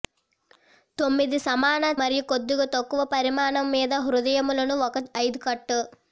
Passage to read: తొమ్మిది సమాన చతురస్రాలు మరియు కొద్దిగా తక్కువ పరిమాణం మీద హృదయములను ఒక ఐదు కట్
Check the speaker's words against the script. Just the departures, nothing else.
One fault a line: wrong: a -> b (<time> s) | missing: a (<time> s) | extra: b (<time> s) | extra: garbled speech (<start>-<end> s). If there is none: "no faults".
missing: చతురస్రాలు (1.8 s)